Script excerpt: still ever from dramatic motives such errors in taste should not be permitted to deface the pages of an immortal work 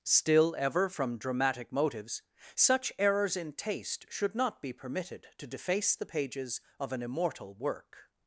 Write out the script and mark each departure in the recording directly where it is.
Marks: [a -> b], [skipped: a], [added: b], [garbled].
still ever from dramatic motives such errors in taste should not be permitted to deface the pages of an immortal work